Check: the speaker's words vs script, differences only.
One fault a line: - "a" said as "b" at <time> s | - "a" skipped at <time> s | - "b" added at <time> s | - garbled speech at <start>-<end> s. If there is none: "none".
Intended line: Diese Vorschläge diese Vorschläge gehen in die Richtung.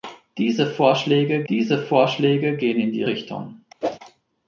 none